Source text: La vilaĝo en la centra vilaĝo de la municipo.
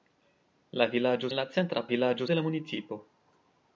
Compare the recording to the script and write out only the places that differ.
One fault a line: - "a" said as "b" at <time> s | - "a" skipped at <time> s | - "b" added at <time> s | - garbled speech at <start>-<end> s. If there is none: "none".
none